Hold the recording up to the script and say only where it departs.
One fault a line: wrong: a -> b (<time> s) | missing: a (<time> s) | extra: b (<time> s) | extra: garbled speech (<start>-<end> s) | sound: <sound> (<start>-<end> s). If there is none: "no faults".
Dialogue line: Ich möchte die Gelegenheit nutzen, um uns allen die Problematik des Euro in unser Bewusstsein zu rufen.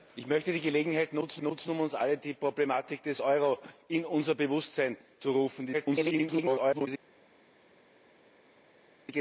extra: nutzen (1.4 s)
extra: garbled speech (5.7-6.9 s)